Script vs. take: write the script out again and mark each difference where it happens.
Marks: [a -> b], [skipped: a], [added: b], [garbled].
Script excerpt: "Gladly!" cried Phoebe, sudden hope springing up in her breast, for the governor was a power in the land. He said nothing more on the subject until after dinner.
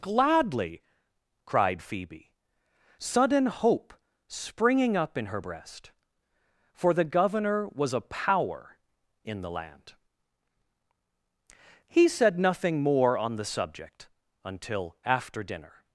"Gladly!" cried Phoebe, sudden hope springing up in her breast, for the governor was a power in the land. He said nothing more on the subject until after dinner.